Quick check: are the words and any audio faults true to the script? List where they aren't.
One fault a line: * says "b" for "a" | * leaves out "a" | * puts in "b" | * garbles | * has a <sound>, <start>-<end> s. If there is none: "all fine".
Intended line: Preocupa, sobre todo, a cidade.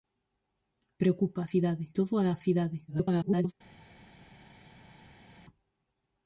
* says "cidade" for "sobre"
* garbles